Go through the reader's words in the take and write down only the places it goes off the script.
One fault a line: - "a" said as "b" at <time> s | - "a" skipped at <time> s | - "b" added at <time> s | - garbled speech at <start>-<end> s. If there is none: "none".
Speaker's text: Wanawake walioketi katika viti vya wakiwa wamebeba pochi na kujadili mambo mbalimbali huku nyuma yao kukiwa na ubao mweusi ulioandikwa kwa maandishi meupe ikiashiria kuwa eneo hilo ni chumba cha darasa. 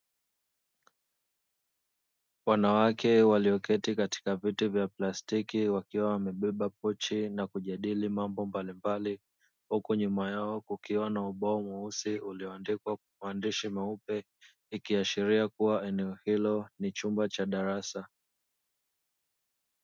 - "plastiki" added at 4.9 s